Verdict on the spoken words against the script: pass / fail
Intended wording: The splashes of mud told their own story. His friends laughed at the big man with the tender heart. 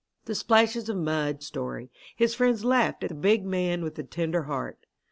fail